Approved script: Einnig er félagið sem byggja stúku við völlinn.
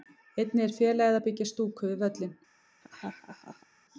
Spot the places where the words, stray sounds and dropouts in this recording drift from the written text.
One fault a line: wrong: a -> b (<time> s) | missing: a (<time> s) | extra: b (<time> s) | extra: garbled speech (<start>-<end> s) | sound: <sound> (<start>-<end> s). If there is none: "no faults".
wrong: sem -> að (1.2 s)
sound: laugh (2.8-3.7 s)